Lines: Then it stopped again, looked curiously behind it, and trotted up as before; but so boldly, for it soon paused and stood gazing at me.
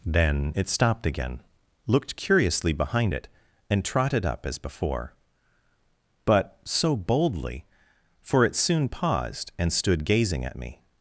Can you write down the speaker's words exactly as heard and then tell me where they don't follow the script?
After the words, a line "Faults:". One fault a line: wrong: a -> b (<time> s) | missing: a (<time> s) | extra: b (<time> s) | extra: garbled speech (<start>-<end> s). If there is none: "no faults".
Then it stopped again, looked curiously behind it, and trotted up as before; but so boldly, for it soon paused and stood gazing at me.
Faults:
no faults